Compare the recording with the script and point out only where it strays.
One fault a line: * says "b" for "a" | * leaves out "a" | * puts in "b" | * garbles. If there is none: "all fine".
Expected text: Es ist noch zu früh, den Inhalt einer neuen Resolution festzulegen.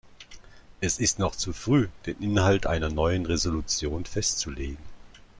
all fine